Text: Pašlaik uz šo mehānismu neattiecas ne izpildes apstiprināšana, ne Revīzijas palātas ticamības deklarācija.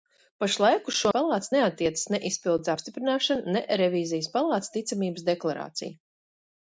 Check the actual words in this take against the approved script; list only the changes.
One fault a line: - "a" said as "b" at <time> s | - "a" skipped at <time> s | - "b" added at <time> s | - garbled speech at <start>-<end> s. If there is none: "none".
- "mehānismu" said as "palātas" at 1.2 s